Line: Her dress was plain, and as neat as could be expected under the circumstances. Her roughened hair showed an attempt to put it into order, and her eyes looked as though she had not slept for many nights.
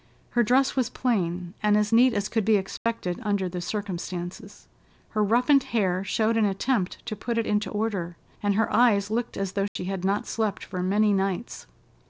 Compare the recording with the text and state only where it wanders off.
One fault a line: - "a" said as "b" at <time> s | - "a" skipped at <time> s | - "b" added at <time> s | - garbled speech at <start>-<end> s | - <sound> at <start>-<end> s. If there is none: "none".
- dropout at 2.8-2.9 s
- dropout at 9.7-9.8 s